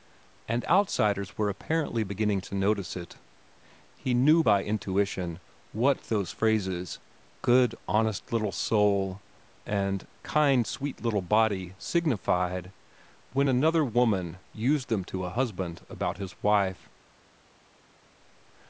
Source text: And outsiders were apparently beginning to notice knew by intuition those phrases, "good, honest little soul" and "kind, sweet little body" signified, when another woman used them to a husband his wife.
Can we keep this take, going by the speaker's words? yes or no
no